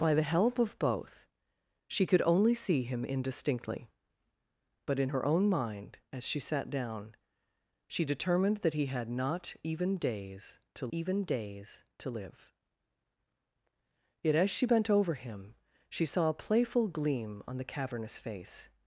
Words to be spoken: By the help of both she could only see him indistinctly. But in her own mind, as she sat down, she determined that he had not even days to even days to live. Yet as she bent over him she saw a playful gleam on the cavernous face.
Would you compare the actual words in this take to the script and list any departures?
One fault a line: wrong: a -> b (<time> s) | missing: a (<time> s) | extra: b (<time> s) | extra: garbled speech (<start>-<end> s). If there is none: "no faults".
no faults